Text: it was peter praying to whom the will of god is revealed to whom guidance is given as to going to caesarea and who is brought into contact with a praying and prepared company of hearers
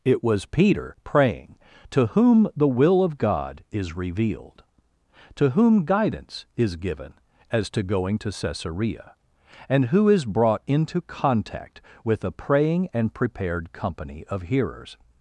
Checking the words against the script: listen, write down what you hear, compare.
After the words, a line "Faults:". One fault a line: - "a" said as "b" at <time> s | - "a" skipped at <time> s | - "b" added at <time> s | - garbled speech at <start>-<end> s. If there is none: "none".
it was peter praying to whom the will of god is revealed to whom guidance is given as to going to caesarea and who is brought into contact with a praying and prepared company of hearers
Faults:
none